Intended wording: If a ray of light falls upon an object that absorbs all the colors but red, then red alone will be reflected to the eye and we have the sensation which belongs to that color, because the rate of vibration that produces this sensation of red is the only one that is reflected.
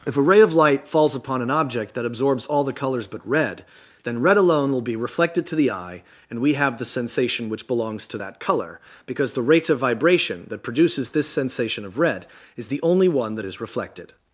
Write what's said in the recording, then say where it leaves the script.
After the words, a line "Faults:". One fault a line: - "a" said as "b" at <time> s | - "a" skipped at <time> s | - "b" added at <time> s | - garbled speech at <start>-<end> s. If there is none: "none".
If a ray of light falls upon an object that absorbs all the colors but red, then red alone will be reflected to the eye and we have the sensation which belongs to that color, because the rate of vibration that produces this sensation of red is the only one that is reflected.
Faults:
none